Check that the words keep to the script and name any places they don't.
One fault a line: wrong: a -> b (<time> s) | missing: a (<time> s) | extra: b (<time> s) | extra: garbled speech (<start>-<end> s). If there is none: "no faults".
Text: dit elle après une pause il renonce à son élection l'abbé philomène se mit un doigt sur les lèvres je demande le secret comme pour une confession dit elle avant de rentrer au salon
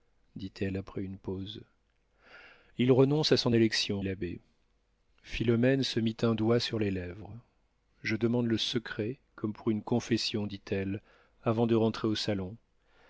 no faults